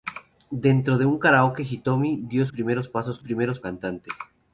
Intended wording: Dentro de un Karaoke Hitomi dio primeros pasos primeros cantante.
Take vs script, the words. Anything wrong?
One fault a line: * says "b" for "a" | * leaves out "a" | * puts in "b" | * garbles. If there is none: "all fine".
all fine